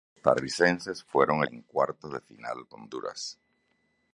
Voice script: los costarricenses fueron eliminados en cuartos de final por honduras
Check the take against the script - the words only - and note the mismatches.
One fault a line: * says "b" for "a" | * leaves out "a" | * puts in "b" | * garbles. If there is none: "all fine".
* leaves out "eliminados"
* leaves out "por"